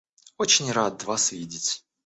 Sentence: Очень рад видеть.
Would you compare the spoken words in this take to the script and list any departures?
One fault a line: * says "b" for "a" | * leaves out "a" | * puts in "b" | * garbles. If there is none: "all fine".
* puts in "вас"